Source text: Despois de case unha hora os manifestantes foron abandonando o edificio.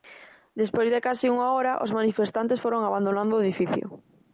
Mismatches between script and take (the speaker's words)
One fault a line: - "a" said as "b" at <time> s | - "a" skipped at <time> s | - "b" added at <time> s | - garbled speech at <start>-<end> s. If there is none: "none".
none